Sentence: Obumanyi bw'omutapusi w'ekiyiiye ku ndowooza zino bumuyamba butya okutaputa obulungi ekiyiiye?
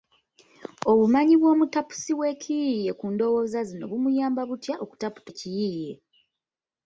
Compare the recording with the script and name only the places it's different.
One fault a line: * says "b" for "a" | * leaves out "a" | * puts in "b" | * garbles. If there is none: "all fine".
* leaves out "obulungi"